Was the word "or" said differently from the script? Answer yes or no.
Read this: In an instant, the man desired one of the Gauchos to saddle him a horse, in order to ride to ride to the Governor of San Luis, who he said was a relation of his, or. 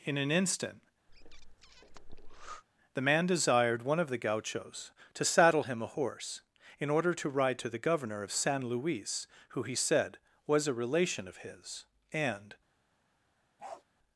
yes